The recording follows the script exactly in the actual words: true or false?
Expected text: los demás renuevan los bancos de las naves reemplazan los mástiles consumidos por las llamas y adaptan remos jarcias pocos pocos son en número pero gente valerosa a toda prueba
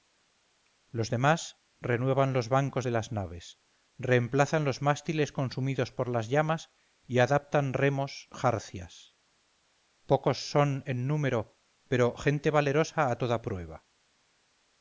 false